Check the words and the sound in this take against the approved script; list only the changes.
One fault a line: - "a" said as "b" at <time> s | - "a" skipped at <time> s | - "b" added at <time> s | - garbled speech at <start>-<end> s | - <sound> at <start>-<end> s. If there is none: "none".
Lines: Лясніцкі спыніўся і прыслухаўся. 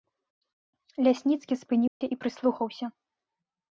- dropout at 1.9-2.0 s